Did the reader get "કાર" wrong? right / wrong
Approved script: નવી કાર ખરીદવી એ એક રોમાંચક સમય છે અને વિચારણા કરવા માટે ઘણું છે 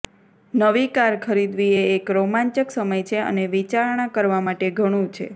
right